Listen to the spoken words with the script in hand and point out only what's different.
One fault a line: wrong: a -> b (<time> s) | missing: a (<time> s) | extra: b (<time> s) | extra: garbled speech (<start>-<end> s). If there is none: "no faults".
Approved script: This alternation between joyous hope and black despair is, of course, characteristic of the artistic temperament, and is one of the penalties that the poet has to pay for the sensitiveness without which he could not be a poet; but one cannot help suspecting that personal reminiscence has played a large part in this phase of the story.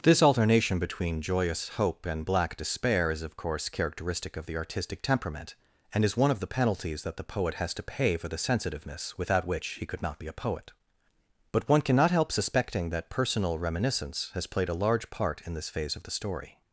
no faults